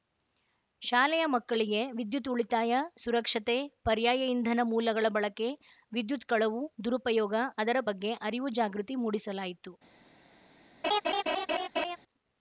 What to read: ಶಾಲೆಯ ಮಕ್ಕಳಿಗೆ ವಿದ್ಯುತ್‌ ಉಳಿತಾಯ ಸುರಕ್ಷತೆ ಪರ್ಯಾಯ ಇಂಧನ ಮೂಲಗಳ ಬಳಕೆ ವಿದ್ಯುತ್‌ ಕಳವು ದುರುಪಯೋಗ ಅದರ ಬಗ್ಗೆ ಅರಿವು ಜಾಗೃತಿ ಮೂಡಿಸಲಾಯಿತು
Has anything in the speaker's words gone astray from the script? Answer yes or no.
no